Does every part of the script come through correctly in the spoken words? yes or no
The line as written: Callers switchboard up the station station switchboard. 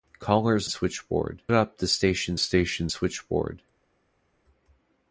yes